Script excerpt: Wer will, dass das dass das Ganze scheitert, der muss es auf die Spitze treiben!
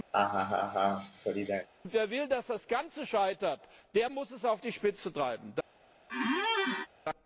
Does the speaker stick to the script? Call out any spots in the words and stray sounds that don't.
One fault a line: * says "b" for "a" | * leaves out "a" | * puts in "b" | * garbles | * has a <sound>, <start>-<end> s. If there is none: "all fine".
* has a laugh, 0.1-1.7 s
* leaves out "dass das"
* has a squeak, 6.1-6.9 s